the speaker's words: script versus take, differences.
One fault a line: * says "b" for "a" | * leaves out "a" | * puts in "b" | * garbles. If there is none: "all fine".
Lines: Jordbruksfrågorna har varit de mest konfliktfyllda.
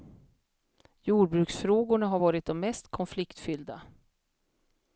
all fine